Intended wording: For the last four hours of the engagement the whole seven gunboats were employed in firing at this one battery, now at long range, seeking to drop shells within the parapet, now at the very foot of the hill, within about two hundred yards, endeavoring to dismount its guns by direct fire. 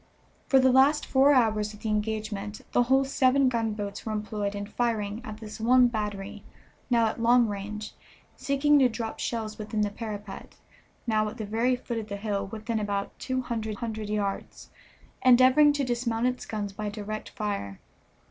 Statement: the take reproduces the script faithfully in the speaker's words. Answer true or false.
false